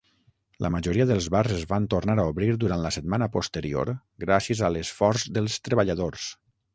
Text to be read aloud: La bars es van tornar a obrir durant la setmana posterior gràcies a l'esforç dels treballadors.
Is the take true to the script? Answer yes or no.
no